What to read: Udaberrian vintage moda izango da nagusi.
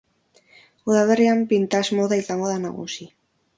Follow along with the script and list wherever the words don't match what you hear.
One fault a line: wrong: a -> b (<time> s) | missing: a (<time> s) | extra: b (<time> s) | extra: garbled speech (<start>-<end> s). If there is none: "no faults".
no faults